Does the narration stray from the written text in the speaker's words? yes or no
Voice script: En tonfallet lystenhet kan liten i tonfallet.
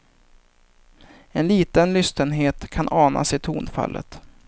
yes